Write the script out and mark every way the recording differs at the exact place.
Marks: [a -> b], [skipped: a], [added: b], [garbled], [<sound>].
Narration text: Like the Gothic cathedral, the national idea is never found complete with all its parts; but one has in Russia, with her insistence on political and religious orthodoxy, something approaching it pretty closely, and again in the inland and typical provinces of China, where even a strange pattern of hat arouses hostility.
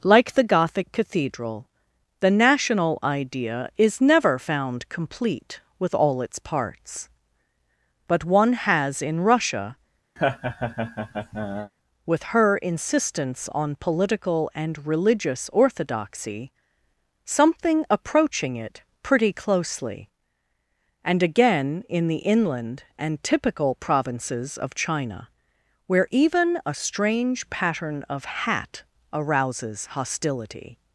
Like the Gothic cathedral, the national idea is never found complete with all its parts; but one has in Russia, [laugh] with her insistence on political and religious orthodoxy, something approaching it pretty closely, and again in the inland and typical provinces of China, where even a strange pattern of hat arouses hostility.